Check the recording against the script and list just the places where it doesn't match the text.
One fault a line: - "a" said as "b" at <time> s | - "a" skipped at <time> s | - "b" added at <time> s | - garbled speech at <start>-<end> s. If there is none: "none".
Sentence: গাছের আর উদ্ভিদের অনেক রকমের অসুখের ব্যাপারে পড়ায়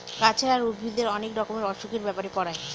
none